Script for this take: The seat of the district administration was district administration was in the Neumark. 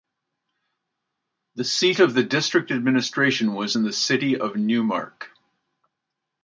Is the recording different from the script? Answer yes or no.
yes